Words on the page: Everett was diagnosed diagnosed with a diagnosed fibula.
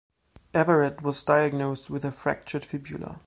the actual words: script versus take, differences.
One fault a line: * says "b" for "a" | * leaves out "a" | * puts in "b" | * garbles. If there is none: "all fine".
* leaves out "diagnosed"
* says "fractured" for "diagnosed"